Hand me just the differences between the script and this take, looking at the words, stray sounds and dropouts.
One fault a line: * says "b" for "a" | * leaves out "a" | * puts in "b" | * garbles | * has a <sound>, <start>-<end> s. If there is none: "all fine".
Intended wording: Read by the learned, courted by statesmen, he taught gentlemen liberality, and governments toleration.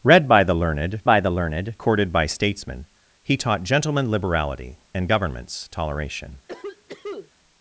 * puts in "by the learned"
* has a cough, 6.5-7.3 s